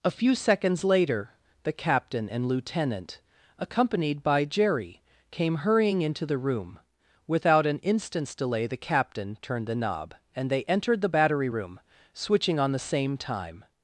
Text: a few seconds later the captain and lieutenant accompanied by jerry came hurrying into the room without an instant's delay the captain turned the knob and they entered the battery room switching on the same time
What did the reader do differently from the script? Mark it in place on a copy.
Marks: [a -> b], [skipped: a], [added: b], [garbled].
a few seconds later the captain and lieutenant accompanied by jerry came hurrying into the room without an instant's delay the captain turned the knob and they entered the battery room switching on the same time